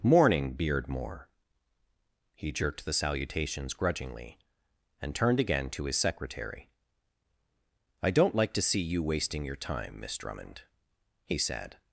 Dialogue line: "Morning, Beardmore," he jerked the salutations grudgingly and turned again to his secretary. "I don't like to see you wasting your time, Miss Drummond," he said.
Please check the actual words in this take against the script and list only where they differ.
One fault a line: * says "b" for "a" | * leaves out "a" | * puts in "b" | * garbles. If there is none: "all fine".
all fine